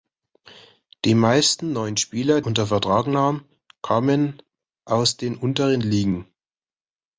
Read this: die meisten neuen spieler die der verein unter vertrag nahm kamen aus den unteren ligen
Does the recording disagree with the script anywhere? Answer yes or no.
yes